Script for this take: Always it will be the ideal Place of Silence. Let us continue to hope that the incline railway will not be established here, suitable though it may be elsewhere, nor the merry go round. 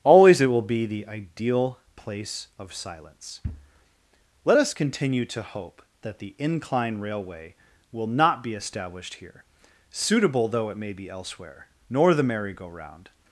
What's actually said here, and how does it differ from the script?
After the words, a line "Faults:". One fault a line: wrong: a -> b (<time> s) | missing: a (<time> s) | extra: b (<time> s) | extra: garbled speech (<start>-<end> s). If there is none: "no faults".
Always it will be the ideal Place of Silence. Let us continue to hope that the incline railway will not be established here, suitable though it may be elsewhere, nor the merry go round.
Faults:
no faults